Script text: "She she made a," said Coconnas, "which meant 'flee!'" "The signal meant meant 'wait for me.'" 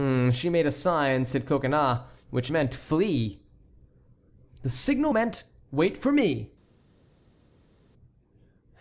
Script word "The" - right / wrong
right